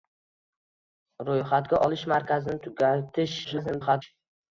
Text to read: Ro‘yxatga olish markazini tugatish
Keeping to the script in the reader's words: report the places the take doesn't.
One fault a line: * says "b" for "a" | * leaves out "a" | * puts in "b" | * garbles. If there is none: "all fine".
* garbles